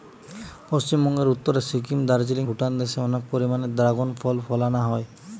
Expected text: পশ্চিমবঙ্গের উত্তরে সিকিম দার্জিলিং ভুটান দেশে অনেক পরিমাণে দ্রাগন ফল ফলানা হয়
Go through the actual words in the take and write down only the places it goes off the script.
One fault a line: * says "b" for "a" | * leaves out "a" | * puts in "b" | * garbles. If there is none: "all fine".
all fine